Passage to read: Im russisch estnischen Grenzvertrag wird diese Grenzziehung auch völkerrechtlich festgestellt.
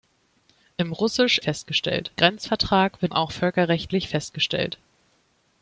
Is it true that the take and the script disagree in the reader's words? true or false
true